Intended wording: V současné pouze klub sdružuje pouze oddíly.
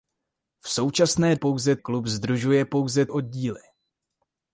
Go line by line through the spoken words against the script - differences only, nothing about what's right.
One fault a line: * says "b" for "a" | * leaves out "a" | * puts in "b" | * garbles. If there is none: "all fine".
all fine